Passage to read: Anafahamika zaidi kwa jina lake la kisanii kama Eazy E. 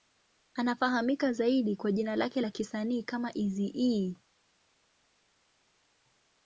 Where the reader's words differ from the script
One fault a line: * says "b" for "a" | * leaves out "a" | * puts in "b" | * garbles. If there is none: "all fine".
all fine